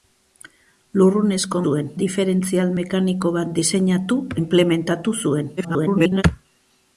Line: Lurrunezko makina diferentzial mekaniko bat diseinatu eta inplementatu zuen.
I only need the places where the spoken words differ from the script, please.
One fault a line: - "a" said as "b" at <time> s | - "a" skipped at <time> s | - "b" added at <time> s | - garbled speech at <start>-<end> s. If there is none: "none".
- "makina" said as "zuen" at 1.6 s
- "eta" skipped at 4.2 s
- garbled speech at 5.6-6.2 s